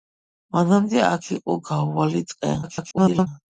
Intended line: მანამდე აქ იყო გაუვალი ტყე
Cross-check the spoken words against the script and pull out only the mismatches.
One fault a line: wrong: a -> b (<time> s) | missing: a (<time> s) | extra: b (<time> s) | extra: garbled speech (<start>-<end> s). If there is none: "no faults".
extra: garbled speech (2.6-3.3 s)